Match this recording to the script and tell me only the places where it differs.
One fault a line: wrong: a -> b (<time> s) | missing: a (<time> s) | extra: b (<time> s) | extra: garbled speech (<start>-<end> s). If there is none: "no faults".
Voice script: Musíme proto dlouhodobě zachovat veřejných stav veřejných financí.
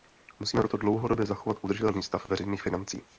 wrong: veřejných -> udržitelný (1.6 s)